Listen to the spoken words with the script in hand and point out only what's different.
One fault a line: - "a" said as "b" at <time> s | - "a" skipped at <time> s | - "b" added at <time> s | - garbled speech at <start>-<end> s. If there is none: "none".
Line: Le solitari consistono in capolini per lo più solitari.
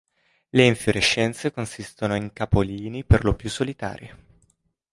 - "solitari" said as "infiorescenze" at 0.7 s